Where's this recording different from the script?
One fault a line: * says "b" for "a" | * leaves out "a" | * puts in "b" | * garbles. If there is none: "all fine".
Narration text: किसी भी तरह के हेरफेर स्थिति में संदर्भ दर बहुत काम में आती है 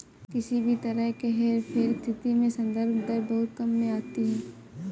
all fine